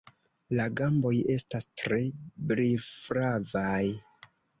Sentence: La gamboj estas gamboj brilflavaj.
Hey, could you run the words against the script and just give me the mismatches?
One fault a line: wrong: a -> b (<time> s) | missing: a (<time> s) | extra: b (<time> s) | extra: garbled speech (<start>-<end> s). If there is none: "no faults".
wrong: gamboj -> tre (1.8 s)